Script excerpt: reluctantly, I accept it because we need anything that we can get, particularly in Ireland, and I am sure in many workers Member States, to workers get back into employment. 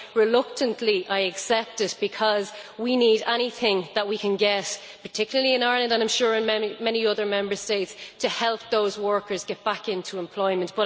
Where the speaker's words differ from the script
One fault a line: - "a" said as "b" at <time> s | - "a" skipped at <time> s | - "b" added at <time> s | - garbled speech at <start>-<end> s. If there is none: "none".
- "workers" said as "other" at 7.1 s
- "help those" added at 8.3 s